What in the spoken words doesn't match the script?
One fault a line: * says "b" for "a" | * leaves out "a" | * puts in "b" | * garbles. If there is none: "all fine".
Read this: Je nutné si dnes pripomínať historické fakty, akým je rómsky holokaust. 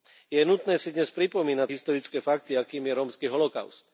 all fine